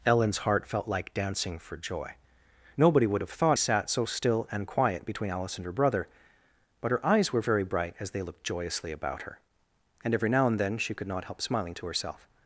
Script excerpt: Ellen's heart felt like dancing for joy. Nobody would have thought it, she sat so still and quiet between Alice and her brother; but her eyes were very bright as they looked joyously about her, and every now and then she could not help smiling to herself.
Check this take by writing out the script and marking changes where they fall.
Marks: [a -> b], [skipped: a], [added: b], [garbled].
Ellen's heart felt like dancing for joy. Nobody would have thought [skipped: it, she] sat so still and quiet between Alice and her brother; but her eyes were very bright as they looked joyously about her, and every now and then she could not help smiling to herself.